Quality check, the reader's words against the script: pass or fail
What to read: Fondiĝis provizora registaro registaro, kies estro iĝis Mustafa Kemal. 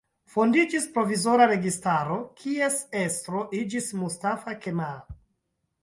fail